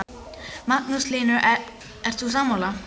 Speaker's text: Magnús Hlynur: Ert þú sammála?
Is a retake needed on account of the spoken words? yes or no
no